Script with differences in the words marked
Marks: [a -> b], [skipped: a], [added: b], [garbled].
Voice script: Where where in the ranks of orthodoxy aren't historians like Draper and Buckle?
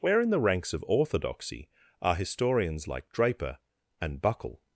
Where [skipped: where] in the ranks of orthodoxy [aren't -> are] historians like Draper and Buckle?